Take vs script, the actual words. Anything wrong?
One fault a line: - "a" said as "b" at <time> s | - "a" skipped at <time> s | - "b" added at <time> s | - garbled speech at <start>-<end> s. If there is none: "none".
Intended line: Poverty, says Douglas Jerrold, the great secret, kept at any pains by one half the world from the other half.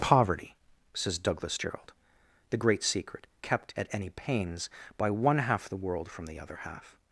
none